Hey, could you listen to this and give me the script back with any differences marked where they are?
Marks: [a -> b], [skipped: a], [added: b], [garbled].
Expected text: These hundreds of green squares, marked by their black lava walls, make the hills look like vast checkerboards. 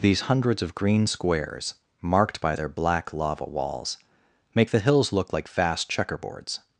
These hundreds of green squares, marked by their black lava walls, make the hills look like vast checkerboards.